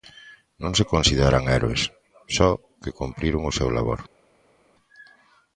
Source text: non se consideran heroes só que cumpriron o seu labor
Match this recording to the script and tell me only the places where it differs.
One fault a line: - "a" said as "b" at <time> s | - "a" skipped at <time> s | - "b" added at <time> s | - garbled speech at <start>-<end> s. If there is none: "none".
none